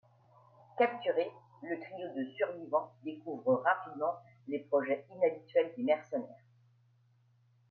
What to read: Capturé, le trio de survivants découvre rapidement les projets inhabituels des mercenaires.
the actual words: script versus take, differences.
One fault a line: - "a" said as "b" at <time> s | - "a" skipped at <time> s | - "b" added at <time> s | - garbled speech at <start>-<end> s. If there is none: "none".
none